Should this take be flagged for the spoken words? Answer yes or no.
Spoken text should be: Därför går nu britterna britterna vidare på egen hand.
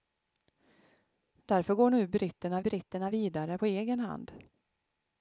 no